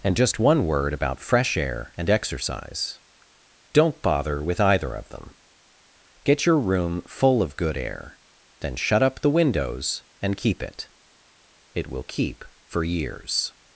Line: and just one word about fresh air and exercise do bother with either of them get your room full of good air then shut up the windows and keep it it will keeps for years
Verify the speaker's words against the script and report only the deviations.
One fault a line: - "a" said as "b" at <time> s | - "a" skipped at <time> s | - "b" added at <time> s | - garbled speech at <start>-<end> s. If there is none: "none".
- "do" said as "don't" at 3.7 s
- "keeps" said as "keep" at 12.0 s